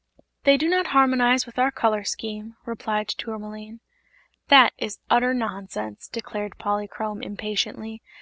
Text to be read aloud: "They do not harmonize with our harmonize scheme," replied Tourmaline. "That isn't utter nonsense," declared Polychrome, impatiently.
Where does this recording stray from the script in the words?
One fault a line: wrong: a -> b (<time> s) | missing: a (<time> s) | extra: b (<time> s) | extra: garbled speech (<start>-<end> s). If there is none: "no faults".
wrong: harmonize -> color (1.7 s)
wrong: isn't -> is (4.8 s)